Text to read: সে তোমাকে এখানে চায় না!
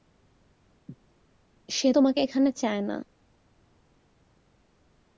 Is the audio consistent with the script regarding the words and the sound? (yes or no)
yes